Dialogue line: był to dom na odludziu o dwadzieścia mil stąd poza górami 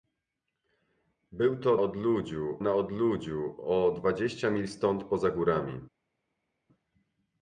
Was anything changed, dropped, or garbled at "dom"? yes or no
yes